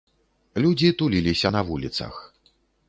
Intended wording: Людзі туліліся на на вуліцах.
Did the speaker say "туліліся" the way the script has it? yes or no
yes